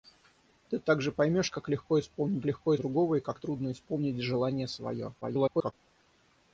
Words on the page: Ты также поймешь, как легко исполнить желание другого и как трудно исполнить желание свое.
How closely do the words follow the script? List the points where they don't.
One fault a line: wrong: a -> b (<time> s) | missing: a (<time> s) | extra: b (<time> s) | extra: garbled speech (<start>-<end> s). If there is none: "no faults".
wrong: желание -> легко (2.5 s)
extra: garbled speech (5.2-5.7 s)